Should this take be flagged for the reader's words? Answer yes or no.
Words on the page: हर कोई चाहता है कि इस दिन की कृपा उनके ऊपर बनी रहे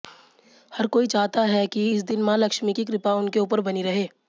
yes